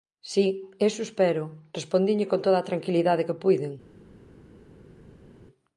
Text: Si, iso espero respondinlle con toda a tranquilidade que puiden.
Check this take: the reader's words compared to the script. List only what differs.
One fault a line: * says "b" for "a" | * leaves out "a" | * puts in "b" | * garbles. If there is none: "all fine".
all fine